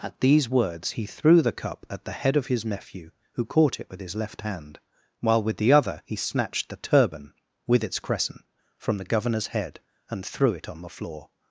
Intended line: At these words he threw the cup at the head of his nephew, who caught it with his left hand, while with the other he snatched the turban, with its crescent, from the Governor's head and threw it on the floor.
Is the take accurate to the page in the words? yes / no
yes